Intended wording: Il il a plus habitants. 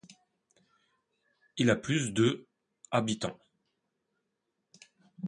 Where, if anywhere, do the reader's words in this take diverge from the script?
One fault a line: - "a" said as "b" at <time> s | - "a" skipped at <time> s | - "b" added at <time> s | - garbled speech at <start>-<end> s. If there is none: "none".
- "il" skipped at 1.7 s
- "de" added at 2.1 s